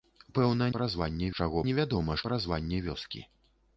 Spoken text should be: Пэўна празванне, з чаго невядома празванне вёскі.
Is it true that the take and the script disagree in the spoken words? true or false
false